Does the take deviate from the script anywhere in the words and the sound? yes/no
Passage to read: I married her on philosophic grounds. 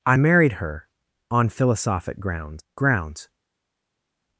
yes